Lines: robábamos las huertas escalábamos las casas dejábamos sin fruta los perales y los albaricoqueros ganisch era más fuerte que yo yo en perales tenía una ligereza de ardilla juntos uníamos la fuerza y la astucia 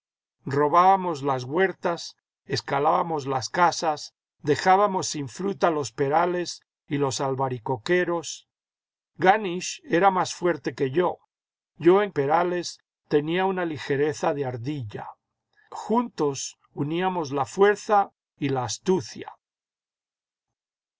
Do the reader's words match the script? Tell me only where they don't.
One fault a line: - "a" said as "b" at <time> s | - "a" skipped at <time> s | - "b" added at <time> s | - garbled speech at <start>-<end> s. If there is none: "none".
none